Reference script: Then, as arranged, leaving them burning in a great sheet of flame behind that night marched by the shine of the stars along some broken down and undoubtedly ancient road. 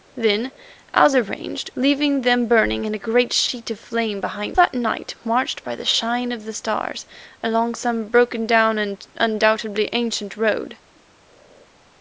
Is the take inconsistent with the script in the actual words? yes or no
no